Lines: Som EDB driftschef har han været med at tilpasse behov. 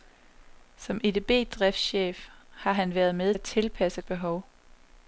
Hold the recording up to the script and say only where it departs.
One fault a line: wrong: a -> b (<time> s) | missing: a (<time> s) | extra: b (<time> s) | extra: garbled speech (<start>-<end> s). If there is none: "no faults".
no faults